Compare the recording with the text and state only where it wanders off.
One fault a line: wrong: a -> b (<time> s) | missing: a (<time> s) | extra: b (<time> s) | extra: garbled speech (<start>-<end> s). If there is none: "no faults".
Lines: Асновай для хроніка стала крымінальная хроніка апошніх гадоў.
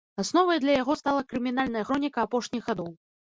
wrong: хроніка -> яго (0.8 s)